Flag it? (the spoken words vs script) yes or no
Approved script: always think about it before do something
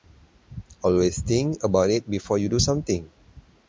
yes